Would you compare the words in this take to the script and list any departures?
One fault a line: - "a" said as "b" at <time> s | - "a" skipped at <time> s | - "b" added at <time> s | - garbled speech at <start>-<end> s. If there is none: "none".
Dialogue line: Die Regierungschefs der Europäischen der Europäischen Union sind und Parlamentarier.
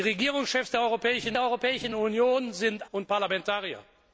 none